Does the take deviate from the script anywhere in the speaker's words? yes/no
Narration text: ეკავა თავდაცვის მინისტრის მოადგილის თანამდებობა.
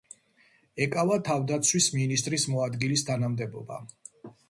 no